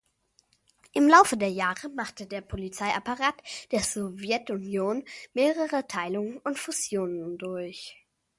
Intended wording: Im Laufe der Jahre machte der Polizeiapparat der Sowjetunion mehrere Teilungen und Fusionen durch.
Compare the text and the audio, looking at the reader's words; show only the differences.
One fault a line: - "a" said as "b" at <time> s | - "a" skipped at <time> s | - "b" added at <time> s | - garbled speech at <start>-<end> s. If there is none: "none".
none